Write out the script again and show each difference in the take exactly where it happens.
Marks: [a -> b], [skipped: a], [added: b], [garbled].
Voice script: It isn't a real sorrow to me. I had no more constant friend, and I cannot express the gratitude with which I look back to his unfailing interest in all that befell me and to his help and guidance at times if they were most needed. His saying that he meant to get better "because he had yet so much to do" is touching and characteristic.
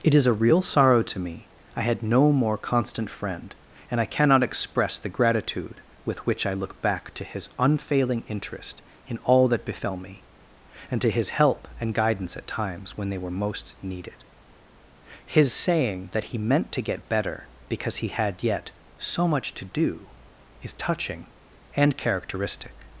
It [isn't -> is] a real sorrow to me. I had no more constant friend, and I cannot express the gratitude with which I look back to his unfailing interest in all that befell me and to his help and guidance at times [if -> when] they were most needed. His saying that he meant to get better "because he had yet so much to do" is touching and characteristic.